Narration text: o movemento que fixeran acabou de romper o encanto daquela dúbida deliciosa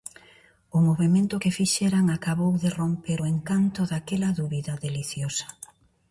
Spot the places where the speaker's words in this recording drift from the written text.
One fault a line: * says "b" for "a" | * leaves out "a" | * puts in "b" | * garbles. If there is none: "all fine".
all fine